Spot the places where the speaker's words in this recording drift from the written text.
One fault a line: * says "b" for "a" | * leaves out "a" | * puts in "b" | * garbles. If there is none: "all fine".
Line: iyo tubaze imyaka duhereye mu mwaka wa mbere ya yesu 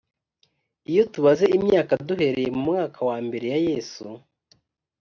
all fine